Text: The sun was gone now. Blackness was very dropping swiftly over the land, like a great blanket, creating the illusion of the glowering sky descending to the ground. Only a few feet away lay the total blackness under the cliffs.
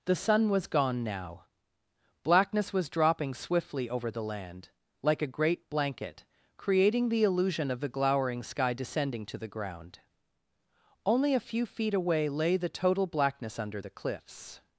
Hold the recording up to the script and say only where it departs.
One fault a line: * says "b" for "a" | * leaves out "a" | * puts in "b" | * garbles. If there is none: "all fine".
* leaves out "very"